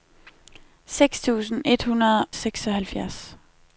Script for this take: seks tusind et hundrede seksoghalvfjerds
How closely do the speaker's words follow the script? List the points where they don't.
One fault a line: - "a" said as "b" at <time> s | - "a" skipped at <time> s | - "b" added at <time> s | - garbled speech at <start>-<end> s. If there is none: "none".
none